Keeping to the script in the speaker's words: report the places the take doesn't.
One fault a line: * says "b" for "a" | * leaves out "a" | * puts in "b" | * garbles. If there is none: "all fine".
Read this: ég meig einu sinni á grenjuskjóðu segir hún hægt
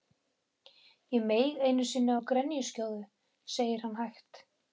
* says "hann" for "hún"